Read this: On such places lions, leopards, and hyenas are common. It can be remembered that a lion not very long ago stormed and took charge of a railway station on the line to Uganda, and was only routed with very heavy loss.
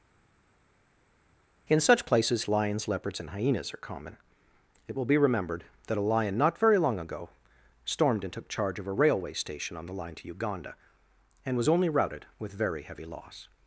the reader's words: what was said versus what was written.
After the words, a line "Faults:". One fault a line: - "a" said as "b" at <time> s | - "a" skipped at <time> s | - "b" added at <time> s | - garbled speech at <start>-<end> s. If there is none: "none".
In such places lions, leopards, and hyenas are common. It will be remembered that a lion not very long ago stormed and took charge of a railway station on the line to Uganda, and was only routed with very heavy loss.
Faults:
- "On" said as "In" at 1.7 s
- "can" said as "will" at 5.0 s